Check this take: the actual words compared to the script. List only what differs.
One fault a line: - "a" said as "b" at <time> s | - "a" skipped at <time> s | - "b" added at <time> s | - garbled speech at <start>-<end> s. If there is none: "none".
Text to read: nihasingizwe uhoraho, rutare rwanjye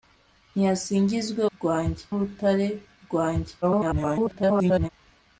- "uhoraho" said as "rwanjye" at 1.5 s
- garbled speech at 3.6-4.9 s